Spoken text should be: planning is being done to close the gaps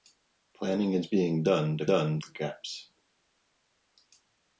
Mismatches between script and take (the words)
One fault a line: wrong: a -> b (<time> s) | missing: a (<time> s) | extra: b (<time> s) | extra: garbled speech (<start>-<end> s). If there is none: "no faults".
wrong: close -> done (1.9 s)